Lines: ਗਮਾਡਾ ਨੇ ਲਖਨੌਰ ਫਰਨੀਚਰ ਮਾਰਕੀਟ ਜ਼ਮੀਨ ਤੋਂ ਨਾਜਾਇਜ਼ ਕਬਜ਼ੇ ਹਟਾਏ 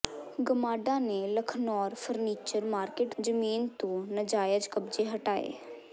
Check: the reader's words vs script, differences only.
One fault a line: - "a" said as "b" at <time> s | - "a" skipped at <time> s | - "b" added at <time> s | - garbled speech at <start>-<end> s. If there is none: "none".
none